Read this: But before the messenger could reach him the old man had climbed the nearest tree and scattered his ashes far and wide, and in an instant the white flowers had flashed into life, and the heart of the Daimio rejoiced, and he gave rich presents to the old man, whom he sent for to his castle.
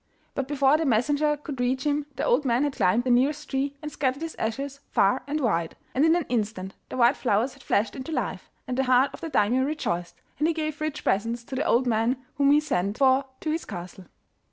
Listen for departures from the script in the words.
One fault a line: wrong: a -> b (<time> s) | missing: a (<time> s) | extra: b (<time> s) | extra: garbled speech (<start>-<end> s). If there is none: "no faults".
no faults